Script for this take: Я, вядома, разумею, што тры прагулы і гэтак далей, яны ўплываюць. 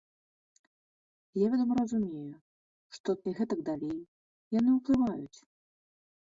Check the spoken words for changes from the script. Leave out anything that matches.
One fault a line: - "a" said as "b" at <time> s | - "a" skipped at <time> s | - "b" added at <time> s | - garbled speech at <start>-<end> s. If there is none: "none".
- "тры прагулы" skipped at 3.1 s